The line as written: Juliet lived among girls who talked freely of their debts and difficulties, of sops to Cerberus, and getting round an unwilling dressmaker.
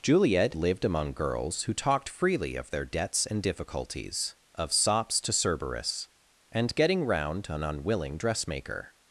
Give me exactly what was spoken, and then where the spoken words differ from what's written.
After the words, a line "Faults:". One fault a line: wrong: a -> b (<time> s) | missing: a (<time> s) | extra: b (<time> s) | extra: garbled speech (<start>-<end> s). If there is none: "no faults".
Juliet lived among girls who talked freely of their debts and difficulties, of sops to Cerberus, and getting round an unwilling dressmaker.
Faults:
no faults